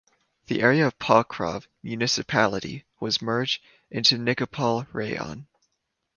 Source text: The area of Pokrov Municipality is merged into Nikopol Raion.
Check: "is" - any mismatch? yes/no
yes